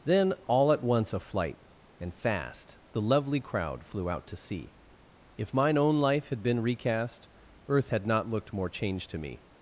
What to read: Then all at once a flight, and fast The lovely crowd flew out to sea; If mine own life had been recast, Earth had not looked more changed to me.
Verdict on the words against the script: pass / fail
pass